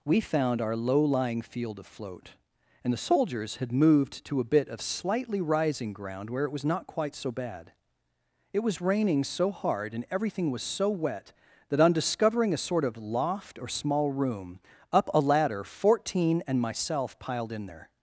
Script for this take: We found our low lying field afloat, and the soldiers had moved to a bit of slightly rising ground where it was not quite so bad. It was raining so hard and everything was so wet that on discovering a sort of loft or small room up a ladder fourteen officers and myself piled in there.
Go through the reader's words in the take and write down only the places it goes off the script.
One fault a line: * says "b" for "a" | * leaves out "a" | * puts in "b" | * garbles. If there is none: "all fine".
* leaves out "officers"